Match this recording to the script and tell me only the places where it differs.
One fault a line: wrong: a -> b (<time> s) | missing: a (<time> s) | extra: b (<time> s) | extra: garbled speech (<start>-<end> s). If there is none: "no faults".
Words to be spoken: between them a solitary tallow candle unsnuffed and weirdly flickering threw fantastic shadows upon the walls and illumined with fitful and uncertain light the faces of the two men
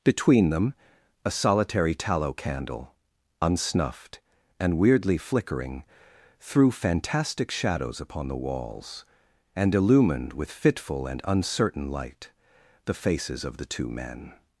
no faults